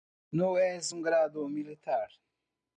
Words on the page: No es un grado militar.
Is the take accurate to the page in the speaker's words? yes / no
yes